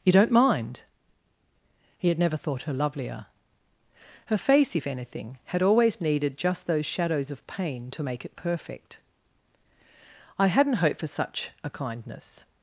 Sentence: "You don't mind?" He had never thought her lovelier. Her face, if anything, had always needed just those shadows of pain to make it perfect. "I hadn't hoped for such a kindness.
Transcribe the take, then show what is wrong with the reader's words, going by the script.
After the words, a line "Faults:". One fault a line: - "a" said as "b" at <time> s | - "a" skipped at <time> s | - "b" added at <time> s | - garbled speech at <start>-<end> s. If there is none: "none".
"You don't mind?" He had never thought her lovelier. Her face, if anything, had always needed just those shadows of pain to make it perfect. "I hadn't hoped for such a kindness.
Faults:
none